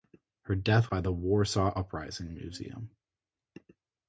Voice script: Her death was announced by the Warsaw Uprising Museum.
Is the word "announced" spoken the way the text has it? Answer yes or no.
no